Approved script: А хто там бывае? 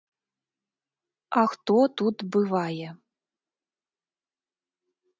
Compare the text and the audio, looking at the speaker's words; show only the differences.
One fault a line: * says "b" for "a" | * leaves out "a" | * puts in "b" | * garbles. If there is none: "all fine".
* says "тут" for "там"